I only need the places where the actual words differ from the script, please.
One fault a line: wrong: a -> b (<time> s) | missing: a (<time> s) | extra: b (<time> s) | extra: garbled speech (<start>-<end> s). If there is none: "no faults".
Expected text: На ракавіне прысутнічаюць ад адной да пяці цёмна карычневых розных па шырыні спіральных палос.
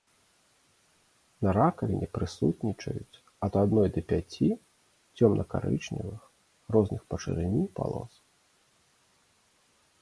missing: спіральных (7.6 s)